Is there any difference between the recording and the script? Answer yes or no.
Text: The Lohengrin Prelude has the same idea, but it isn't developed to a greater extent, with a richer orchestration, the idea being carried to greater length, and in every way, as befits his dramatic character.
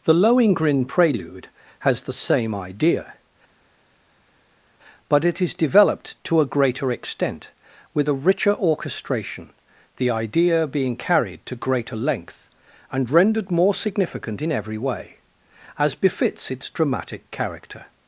yes